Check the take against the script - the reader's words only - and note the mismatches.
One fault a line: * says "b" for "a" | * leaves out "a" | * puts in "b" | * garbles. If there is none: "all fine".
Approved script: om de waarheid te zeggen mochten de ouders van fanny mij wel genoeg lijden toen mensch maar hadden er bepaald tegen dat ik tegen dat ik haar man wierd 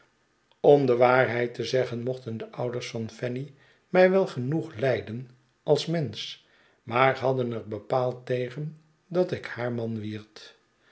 * says "als" for "toen"
* leaves out "tegen dat ik"